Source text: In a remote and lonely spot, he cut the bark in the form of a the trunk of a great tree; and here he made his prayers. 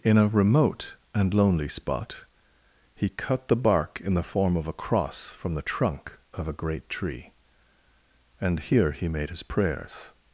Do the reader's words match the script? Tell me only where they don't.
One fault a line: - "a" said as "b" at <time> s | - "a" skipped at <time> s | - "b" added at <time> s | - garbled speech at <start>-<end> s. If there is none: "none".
- "cross from" added at 4.7 s